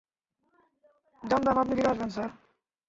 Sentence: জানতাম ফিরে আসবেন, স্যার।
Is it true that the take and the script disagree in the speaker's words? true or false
true